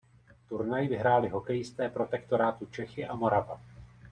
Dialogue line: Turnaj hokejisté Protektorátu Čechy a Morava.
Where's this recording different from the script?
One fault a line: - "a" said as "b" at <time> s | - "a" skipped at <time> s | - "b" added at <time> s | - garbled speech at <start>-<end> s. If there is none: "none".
- "vyhráli" added at 0.8 s